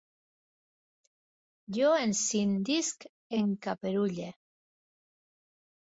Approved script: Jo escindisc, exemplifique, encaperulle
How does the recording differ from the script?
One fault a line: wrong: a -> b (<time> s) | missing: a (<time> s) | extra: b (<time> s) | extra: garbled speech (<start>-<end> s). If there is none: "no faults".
missing: exemplifique (3.1 s)